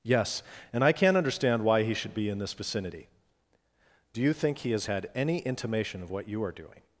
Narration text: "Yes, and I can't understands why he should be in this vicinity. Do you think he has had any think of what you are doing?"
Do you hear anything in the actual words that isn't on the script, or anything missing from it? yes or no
yes